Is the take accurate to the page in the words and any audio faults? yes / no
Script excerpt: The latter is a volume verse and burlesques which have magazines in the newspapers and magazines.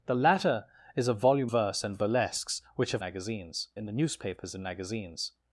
yes